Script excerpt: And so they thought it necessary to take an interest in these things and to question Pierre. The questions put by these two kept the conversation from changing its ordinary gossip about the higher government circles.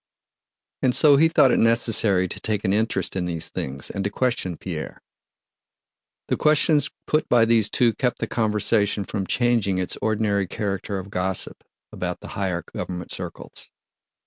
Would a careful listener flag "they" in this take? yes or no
yes